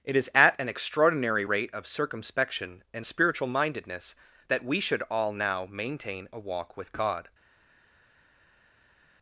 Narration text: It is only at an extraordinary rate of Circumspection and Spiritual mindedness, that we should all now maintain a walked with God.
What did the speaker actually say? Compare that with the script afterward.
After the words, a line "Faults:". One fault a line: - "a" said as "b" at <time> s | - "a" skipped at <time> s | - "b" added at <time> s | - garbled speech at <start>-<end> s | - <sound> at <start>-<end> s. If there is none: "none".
It is at an extraordinary rate of Circumspection and Spiritual mindedness, that we should all now maintain a walk with God.
Faults:
- "only" skipped at 0.3 s
- "walked" said as "walk" at 6.4 s